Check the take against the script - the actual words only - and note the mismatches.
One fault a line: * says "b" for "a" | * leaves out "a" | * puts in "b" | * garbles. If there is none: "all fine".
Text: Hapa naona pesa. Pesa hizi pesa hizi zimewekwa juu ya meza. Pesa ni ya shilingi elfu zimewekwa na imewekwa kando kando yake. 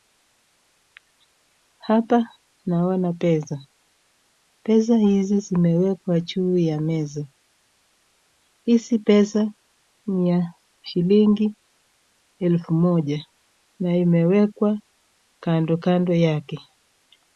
* leaves out "pesa hizi"
* puts in "Hizi"
* says "moja" for "zimewekwa"